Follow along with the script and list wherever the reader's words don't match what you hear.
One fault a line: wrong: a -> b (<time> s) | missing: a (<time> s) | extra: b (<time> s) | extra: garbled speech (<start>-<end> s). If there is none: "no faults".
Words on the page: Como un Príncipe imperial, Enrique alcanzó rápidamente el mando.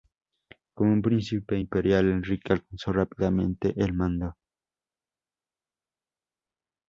no faults